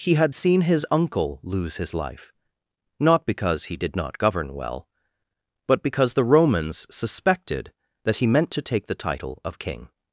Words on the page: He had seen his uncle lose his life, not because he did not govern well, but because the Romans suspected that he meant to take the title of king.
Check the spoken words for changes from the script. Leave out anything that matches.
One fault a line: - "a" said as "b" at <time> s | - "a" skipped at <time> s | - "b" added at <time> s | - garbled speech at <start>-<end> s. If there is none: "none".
none